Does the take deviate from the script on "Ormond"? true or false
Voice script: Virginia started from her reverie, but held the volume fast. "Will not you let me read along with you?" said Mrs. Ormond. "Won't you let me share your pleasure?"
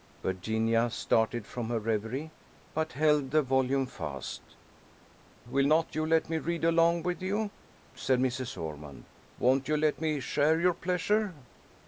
false